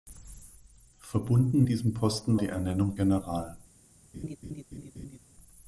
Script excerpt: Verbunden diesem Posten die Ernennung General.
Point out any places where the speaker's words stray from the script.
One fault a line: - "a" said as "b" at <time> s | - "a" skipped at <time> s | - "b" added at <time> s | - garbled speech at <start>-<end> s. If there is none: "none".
none